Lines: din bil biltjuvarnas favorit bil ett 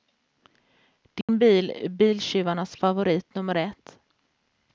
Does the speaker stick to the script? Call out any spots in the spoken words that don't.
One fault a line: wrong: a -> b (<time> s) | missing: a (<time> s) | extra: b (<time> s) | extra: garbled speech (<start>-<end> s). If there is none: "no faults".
extra: är (1.7 s)
wrong: bil -> nummer (3.4 s)